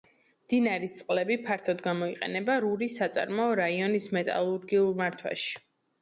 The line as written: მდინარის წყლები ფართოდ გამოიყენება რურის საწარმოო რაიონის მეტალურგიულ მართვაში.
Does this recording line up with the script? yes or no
yes